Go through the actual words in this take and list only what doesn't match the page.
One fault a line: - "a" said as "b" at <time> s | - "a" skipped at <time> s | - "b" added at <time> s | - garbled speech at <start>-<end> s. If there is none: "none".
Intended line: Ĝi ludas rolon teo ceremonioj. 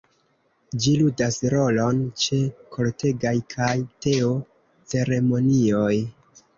- "ĉe kortegaj kaj" added at 2.2 s